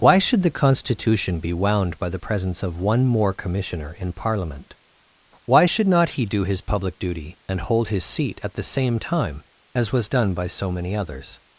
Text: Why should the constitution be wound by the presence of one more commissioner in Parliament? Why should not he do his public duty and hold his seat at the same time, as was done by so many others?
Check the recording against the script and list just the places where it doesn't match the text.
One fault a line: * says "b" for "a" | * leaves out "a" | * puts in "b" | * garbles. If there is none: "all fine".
all fine